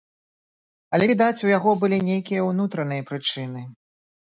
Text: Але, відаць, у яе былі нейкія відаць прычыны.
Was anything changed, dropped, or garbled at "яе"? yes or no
yes